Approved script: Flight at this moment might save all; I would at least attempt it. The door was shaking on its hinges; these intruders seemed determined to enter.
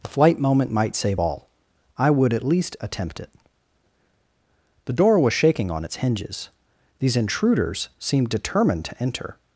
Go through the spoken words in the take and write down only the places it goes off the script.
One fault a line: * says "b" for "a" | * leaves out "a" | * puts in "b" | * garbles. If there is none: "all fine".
* leaves out "at this"